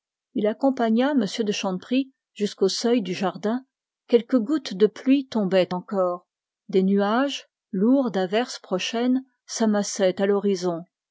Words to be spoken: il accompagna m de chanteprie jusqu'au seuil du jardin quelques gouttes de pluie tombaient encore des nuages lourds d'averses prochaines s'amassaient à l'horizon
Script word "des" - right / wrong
right